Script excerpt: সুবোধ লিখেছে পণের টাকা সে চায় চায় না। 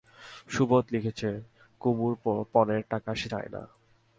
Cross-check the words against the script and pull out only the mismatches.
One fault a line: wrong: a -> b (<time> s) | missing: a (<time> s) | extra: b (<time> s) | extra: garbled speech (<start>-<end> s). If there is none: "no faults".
extra: কুমুর (1.8 s)
missing: চায় (3.5 s)